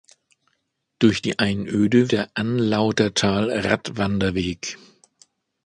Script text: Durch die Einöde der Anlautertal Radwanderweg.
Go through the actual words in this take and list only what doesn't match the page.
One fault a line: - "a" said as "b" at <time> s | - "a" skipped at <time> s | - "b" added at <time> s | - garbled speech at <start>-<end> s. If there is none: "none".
none